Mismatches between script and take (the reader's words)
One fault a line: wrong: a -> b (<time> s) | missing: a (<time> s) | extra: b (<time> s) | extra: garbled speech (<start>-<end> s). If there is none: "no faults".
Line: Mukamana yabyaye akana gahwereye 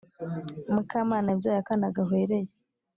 no faults